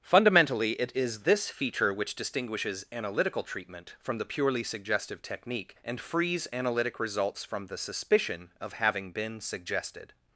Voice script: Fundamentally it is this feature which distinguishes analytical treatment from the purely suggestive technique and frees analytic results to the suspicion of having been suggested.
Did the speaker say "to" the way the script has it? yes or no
no